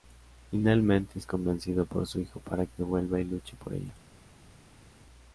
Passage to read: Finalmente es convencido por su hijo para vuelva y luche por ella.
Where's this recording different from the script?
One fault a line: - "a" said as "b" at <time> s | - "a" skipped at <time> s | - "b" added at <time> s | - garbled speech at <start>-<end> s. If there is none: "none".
- "que" added at 2.7 s